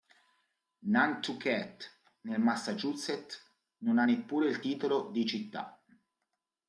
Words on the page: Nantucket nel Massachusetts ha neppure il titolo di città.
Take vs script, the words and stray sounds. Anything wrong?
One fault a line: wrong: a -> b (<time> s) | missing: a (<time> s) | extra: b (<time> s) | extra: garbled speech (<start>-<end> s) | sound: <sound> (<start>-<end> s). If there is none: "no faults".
extra: non (3.8 s)